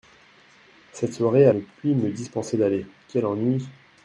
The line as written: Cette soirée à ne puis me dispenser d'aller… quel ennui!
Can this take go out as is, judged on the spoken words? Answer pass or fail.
pass